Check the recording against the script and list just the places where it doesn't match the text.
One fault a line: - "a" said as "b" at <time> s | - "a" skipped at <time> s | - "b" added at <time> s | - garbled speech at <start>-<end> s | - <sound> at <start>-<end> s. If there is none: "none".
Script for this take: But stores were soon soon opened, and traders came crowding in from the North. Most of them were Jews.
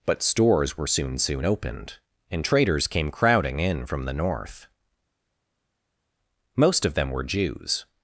none